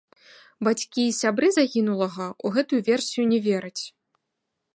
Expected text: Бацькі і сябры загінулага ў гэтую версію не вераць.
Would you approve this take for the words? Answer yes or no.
yes